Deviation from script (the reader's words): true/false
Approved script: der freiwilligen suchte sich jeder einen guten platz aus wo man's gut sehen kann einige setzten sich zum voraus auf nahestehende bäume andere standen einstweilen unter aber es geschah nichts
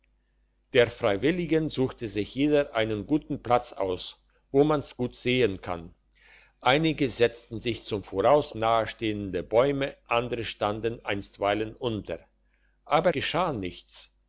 true